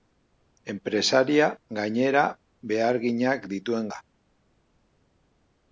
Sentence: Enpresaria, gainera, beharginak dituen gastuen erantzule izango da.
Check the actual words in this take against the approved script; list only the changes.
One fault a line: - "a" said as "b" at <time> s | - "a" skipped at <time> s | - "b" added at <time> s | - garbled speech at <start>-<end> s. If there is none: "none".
- "gastuen erantzule izango" skipped at 3.9 s